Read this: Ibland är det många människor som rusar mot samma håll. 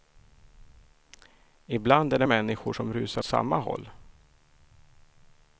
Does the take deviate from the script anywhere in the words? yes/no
yes